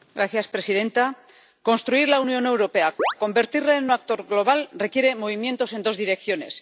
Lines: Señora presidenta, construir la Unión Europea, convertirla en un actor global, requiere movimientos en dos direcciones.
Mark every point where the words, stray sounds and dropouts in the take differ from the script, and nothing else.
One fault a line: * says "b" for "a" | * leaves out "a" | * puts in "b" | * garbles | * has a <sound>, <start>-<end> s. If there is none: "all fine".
* has a chirp, 3.0-3.1 s